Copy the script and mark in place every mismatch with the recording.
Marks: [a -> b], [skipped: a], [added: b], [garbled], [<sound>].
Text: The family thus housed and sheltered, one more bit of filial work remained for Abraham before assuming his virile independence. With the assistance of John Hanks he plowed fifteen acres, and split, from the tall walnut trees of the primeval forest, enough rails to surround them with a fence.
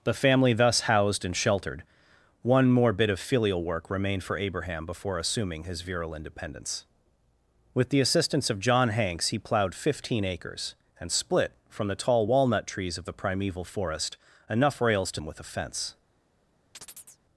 The family thus housed and sheltered, one more bit of filial work remained for Abraham before assuming his virile independence. With the assistance of John Hanks he plowed fifteen acres, and split, from the tall walnut trees of the primeval forest, enough rails to [skipped: surround] them with a fence. [chirp]